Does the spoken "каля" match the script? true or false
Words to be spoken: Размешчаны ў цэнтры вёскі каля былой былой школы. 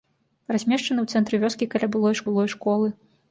true